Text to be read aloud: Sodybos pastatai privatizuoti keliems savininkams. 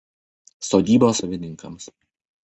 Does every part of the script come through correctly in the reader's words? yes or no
no